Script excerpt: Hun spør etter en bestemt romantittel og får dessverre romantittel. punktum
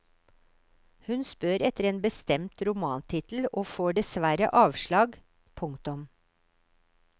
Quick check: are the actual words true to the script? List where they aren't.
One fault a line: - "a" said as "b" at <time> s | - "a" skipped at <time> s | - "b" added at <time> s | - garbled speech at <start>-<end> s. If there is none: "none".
- "romantittel" said as "avslag" at 4.7 s